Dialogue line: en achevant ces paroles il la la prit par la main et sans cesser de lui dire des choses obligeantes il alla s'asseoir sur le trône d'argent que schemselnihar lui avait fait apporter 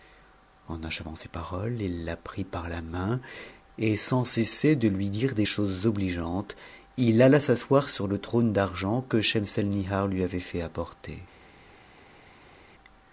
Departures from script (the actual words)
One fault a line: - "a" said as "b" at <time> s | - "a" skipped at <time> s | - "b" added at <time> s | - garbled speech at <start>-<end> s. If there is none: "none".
- "la" skipped at 2.2 s